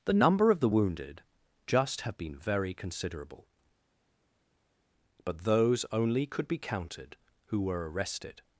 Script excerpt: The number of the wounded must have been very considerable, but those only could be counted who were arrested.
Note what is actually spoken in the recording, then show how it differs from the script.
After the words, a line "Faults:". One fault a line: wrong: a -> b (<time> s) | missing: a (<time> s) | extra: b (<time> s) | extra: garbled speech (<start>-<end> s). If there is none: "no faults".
The number of the wounded just have been very considerable, but those only could be counted who were arrested.
Faults:
wrong: must -> just (1.7 s)